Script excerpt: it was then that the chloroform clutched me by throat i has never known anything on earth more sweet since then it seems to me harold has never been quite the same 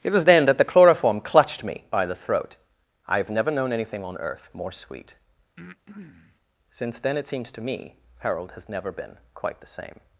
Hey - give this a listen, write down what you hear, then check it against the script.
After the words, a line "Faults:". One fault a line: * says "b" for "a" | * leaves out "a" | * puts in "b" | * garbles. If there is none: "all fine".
it was then that the chloroform clutched me by the throat i have never known anything on earth more sweet since then it seems to me harold has never been quite the same
Faults:
* puts in "the"
* says "have" for "has"